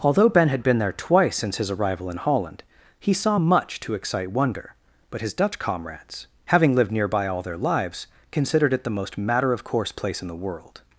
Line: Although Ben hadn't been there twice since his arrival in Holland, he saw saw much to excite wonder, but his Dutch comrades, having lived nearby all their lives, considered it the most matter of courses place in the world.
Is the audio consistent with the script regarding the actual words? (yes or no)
no